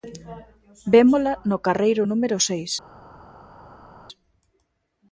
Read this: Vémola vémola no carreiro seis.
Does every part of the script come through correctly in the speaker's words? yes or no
no